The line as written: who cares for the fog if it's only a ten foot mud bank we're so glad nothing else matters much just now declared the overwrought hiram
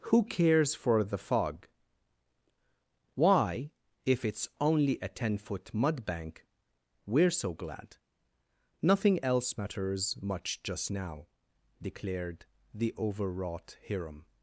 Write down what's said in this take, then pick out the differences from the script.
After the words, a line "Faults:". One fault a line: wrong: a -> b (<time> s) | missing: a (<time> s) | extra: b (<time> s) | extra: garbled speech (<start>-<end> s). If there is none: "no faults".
who cares for the fog why if it's only a ten foot mud bank we're so glad nothing else matters much just now declared the overwrought hiram
Faults:
extra: why (3.1 s)